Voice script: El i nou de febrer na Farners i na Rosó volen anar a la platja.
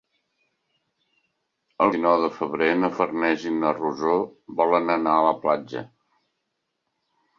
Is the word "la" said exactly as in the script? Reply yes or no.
yes